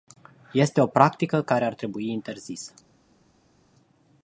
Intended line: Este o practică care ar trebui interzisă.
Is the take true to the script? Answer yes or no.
yes